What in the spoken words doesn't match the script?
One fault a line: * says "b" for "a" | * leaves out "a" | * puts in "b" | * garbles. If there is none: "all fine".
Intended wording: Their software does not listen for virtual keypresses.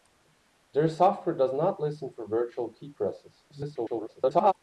* garbles